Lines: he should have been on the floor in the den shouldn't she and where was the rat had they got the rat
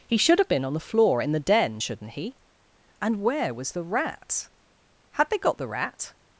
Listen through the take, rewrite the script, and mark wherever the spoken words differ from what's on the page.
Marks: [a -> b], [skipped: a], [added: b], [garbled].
he should have been on the floor in the den shouldn't [she -> he] and where was the rat had they got the rat